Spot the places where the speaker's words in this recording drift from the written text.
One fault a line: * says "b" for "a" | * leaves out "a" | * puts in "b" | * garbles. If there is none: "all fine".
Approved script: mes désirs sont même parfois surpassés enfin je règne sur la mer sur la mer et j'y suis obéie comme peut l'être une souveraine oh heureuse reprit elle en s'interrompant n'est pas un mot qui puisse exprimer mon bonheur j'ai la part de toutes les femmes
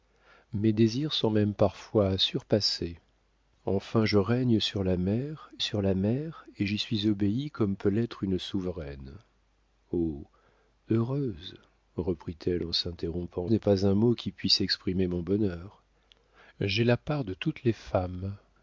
all fine